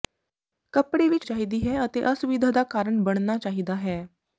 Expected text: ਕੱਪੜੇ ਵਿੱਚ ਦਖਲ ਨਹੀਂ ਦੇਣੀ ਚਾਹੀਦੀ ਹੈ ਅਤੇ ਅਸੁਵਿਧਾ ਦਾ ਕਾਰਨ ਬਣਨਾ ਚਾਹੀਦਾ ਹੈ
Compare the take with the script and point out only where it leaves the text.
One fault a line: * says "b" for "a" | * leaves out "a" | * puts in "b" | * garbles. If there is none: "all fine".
* leaves out "ਦਖਲ ਨਹੀਂ ਦੇਣੀ"